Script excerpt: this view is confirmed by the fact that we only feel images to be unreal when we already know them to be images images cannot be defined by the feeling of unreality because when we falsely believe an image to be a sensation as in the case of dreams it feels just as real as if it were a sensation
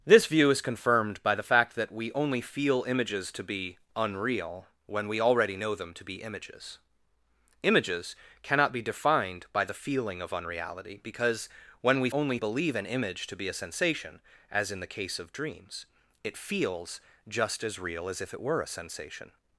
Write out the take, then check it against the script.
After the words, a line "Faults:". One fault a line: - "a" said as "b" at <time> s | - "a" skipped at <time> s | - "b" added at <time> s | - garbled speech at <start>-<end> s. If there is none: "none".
this view is confirmed by the fact that we only feel images to be unreal when we already know them to be images images cannot be defined by the feeling of unreality because when we only believe an image to be a sensation as in the case of dreams it feels just as real as if it were a sensation
Faults:
- "falsely" said as "only" at 12.1 s